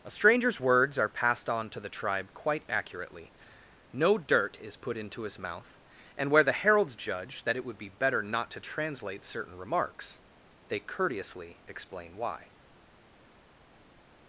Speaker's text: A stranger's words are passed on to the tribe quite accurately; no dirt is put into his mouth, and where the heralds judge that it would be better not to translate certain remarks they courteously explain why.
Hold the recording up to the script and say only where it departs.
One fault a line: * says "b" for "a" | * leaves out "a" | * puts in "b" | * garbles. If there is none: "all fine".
all fine